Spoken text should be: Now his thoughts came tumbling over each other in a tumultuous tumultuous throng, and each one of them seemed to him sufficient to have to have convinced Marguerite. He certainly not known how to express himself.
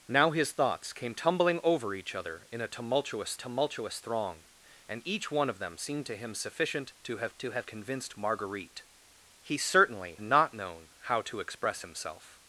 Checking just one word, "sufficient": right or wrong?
right